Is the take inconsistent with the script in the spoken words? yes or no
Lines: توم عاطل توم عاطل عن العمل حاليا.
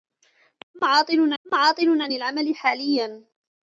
no